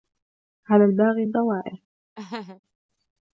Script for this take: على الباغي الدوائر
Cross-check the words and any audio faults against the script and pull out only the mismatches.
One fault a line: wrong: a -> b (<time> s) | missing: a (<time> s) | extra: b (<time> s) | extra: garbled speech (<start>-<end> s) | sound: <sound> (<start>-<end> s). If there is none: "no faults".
sound: laugh (2.2-2.6 s)